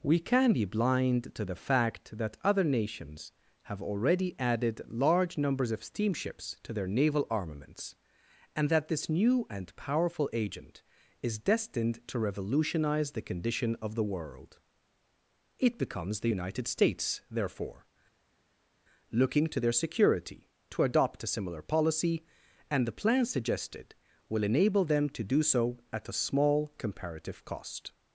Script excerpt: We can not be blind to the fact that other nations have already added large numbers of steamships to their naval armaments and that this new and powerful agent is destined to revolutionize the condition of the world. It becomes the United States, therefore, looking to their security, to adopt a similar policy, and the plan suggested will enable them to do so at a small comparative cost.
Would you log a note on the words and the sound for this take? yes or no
yes